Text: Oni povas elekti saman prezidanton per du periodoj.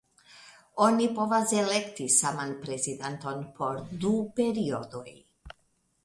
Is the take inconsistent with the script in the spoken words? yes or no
yes